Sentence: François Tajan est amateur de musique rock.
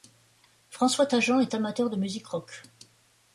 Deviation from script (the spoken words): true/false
false